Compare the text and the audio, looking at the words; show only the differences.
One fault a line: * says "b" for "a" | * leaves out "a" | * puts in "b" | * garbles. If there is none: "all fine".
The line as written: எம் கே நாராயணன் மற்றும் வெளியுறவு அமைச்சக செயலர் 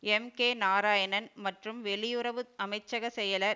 all fine